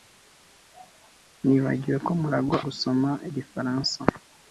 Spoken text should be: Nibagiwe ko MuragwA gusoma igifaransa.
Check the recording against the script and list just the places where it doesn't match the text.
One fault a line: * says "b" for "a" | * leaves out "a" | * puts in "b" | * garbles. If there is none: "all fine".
all fine